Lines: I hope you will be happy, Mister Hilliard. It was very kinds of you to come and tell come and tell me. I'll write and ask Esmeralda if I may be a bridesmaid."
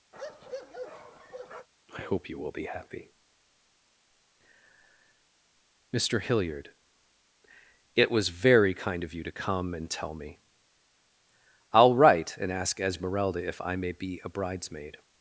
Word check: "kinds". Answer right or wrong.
wrong